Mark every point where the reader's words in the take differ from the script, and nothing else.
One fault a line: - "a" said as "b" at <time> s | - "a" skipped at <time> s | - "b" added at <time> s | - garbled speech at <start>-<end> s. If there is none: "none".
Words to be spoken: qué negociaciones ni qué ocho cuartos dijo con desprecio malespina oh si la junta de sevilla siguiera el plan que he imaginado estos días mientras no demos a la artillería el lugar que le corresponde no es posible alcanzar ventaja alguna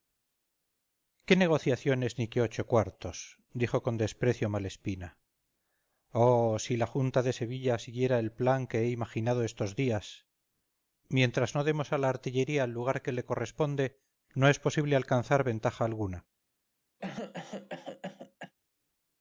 none